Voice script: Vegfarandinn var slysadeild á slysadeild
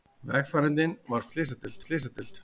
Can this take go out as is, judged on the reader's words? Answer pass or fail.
pass